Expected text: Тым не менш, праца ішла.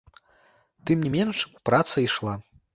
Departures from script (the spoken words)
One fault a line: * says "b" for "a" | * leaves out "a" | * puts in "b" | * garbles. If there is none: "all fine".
all fine